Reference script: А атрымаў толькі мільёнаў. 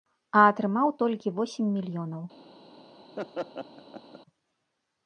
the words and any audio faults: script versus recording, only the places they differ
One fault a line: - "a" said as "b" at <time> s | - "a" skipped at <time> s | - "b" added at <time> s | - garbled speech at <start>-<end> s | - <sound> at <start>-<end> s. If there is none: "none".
- "восем" added at 1.4 s
- laugh at 3.2-4.2 s